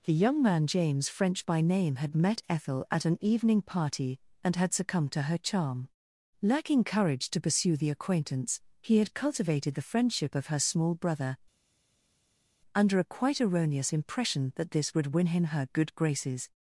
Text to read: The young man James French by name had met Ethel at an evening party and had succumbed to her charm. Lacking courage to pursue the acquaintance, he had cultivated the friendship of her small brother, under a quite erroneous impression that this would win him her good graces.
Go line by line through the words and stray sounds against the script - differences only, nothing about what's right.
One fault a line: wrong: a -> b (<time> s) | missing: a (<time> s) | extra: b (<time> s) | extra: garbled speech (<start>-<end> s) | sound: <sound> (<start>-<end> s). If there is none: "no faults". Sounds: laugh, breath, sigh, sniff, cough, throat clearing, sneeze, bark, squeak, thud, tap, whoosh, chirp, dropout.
no faults